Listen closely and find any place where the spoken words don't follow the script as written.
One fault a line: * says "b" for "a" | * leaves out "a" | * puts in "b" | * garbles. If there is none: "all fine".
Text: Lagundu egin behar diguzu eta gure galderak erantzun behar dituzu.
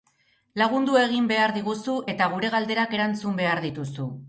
all fine